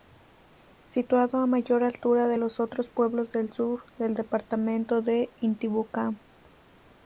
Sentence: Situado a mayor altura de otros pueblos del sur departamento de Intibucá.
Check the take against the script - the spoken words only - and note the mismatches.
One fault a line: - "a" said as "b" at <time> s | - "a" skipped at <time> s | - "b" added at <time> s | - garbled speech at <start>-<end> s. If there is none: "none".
- "los" added at 2.4 s
- "del" added at 4.0 s